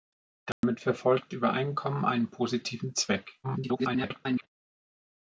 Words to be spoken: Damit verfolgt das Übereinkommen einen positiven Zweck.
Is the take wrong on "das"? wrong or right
wrong